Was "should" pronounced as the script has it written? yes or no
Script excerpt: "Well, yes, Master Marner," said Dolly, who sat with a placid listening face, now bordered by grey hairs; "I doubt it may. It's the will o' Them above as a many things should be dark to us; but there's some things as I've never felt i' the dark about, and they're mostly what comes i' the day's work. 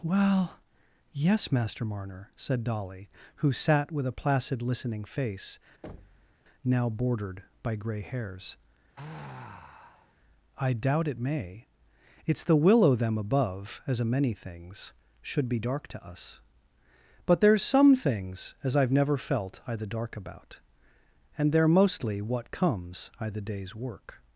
yes